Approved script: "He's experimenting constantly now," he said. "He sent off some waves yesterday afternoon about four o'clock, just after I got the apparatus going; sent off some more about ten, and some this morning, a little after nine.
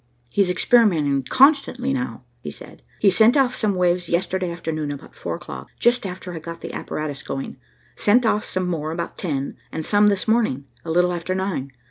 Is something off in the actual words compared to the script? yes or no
no